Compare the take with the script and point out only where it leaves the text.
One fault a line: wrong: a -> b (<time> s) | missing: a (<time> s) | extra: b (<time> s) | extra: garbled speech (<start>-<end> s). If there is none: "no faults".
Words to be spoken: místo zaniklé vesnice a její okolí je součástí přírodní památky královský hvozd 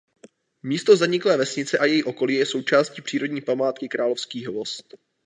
no faults